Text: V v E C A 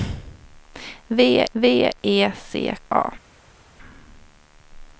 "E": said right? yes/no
yes